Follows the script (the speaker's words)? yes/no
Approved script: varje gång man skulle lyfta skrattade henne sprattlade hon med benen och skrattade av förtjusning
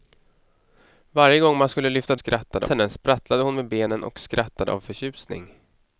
yes